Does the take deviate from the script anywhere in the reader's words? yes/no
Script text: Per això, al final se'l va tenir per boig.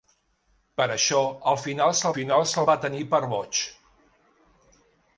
yes